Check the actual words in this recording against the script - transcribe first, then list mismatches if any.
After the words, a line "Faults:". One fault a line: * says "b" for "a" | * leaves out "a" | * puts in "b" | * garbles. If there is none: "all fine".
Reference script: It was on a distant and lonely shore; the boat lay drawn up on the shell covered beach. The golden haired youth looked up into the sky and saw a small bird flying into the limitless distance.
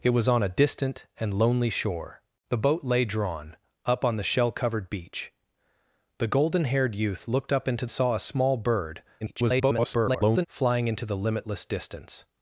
It was on a distant and lonely shore; the boat lay drawn up on the shell covered beach. The golden haired youth looked up into saw a small bird [garbled] flying into the limitless distance.
Faults:
* leaves out "the sky and"
* garbles